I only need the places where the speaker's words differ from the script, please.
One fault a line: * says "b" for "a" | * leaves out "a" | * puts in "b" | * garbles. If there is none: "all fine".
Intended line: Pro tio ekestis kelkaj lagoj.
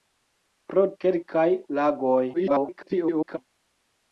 * leaves out "tio ekestis"
* garbles